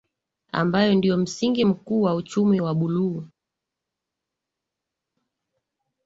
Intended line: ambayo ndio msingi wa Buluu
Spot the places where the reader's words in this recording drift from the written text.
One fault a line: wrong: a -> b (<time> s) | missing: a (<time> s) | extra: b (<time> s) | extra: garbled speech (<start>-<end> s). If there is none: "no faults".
extra: mkuu wa uchumi (1.6 s)